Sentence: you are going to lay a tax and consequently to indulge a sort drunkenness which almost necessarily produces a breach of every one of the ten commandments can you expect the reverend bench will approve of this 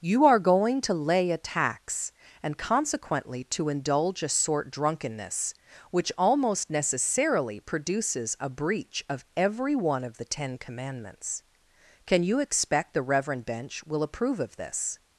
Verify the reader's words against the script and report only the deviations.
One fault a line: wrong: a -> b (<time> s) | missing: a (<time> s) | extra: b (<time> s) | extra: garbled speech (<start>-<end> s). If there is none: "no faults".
no faults